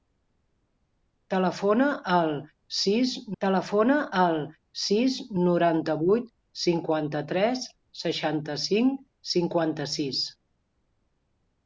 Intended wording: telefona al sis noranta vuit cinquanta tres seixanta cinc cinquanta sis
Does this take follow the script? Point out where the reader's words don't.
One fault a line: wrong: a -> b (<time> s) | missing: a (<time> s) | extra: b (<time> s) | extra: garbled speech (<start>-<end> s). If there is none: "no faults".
extra: telefona al sis (3.4 s)